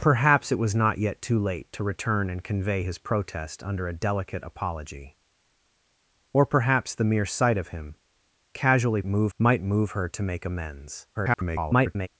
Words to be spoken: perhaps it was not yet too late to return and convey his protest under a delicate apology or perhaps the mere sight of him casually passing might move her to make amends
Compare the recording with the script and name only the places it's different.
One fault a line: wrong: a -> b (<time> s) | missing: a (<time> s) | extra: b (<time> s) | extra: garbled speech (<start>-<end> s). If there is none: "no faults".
wrong: passing -> move (9.1 s)
extra: garbled speech (11.1-12.1 s)